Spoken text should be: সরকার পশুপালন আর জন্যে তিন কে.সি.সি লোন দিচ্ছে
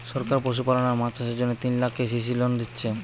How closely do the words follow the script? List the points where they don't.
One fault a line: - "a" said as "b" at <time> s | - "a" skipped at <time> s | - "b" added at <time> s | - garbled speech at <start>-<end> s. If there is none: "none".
- "মাছ চাষের" added at 0.9 s
- "লাখ" added at 1.8 s